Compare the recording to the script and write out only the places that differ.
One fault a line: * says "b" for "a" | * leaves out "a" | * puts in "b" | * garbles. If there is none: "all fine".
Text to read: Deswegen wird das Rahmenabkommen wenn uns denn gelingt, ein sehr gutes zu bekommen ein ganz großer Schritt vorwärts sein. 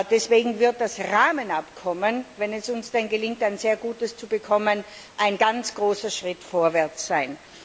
* puts in "es"